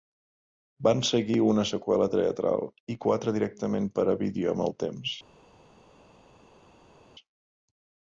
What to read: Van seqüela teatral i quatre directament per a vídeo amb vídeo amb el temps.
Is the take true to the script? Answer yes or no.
no